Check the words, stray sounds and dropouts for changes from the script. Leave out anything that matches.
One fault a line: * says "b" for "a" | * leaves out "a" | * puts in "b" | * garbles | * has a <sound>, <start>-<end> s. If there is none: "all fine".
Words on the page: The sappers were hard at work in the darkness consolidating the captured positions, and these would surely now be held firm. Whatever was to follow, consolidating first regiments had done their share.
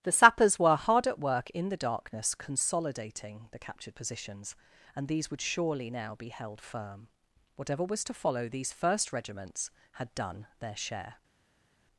* says "these" for "consolidating"